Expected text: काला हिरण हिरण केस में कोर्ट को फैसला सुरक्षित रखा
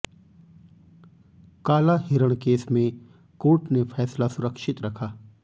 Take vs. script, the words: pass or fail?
fail